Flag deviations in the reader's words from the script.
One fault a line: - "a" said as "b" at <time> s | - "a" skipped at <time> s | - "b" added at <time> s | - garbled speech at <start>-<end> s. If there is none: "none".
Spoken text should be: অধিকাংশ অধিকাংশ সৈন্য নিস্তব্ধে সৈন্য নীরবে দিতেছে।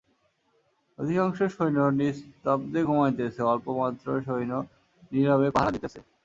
- "অধিকাংশ" skipped at 1.4 s
- "ঘুমাইতেছে অল্পমাত্র" added at 2.8 s
- "পাহারা" added at 5.5 s